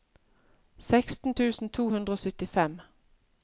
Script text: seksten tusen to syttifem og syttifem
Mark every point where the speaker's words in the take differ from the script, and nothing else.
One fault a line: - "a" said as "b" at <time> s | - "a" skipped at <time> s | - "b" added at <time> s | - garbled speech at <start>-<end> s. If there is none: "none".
- "syttifem" said as "hundre" at 1.9 s